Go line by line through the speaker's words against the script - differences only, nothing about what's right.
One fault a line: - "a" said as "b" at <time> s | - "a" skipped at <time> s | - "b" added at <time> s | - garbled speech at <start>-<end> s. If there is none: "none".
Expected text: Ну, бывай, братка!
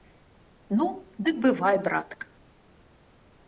- "дык" added at 1.2 s